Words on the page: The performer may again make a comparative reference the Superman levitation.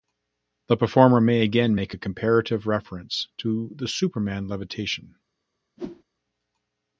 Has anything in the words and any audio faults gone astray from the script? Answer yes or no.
yes